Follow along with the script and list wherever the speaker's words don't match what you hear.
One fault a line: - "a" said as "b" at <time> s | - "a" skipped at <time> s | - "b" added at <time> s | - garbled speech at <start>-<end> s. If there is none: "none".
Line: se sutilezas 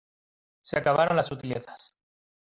- "acabaron las" added at 0.8 s